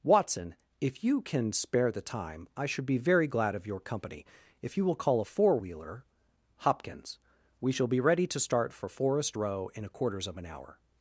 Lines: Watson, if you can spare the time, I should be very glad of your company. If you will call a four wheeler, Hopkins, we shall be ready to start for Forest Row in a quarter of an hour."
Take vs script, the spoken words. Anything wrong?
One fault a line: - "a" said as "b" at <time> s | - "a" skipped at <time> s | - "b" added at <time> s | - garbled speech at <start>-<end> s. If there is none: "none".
- "quarter" said as "quarters" at 9.9 s